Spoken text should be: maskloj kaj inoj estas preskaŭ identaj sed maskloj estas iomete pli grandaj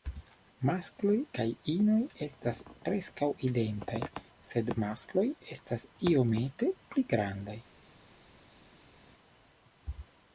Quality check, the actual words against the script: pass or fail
pass